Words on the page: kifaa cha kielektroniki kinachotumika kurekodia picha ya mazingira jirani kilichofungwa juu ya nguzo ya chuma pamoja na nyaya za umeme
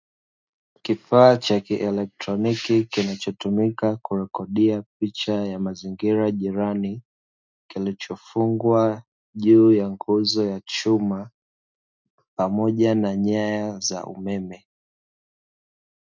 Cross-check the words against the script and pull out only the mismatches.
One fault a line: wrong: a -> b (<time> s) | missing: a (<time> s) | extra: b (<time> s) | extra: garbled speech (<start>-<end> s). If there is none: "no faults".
no faults